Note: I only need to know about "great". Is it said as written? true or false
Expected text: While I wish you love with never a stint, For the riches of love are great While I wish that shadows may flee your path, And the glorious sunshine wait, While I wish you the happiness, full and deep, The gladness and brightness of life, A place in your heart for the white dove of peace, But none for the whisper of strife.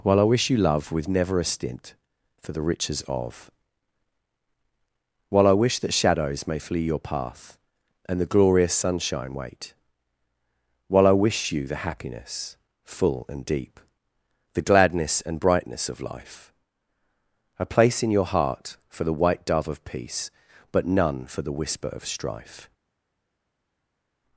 false